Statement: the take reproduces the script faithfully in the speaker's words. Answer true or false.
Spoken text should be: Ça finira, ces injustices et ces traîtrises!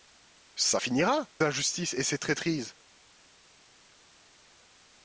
false